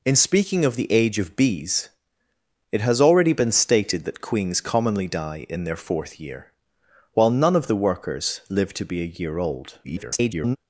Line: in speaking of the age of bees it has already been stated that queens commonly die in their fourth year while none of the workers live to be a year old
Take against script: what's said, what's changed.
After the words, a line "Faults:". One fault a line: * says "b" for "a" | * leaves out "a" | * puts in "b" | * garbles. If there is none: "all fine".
in speaking of the age of bees it has already been stated that queens commonly die in their fourth year while none of the workers live to be a year old [garbled]
Faults:
* garbles